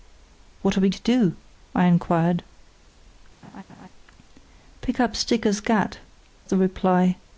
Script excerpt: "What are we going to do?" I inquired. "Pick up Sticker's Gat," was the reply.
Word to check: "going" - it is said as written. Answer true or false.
false